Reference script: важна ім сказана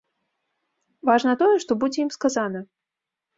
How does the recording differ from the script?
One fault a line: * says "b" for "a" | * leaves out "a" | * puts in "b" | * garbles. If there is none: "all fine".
* puts in "тое што будзе"